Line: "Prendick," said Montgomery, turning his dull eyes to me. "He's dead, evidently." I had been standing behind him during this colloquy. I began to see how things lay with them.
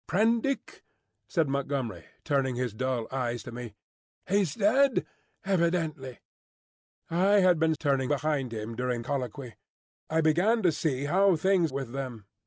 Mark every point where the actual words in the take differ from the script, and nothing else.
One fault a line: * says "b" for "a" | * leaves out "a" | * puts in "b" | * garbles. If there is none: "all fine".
* says "turning" for "standing"
* leaves out "this"
* leaves out "lay"